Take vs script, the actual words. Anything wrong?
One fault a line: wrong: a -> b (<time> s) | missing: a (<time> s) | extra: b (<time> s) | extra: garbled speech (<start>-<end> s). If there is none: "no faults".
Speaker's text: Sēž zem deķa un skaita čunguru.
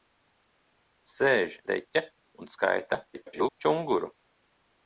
missing: zem (1.6 s)
extra: garbled speech (3.1-3.6 s)